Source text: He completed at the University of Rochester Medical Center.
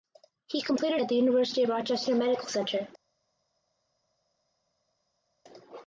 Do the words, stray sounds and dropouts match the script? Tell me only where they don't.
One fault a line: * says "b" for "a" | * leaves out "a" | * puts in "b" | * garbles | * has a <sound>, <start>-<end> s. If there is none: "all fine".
all fine